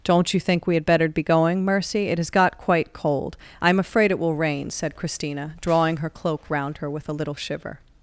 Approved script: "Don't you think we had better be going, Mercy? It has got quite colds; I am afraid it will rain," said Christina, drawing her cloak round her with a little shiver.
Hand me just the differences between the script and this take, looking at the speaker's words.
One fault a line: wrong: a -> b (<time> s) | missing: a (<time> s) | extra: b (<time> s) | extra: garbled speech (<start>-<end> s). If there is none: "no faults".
wrong: colds -> cold (2.9 s)